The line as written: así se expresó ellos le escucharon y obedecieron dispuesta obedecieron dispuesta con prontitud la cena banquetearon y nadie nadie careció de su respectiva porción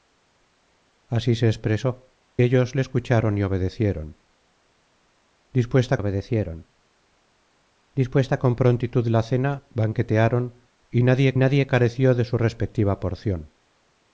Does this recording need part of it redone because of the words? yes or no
no